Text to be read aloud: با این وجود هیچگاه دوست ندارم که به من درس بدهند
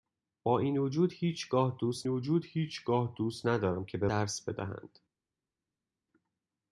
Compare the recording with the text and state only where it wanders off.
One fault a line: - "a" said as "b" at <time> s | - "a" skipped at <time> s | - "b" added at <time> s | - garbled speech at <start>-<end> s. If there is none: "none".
- "وجود هیچگاه دوست" added at 2.1 s
- "من" skipped at 4.1 s